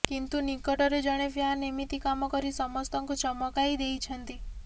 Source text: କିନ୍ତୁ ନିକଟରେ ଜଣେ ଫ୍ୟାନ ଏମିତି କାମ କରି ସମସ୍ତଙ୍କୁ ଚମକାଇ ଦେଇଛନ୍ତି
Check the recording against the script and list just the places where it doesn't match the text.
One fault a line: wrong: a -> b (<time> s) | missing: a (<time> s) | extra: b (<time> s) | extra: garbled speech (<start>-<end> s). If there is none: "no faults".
no faults